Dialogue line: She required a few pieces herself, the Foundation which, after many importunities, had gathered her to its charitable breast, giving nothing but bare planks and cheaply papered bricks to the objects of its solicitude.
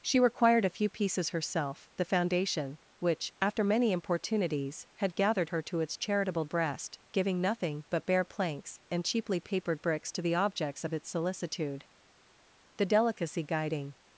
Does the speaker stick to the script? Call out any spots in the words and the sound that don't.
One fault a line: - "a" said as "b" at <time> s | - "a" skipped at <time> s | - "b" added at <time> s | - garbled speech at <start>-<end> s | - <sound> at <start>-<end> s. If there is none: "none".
- "The delicacy guiding" added at 12.7 s